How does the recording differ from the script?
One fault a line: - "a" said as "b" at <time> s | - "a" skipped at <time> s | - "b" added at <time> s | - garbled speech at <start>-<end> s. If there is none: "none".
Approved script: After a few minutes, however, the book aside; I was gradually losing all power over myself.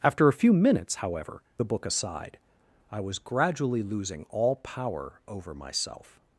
none